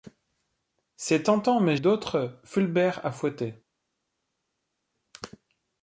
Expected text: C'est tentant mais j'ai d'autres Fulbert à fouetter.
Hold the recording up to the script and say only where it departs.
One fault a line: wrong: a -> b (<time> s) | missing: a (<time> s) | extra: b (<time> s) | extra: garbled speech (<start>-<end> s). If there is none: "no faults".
missing: j'ai (1.8 s)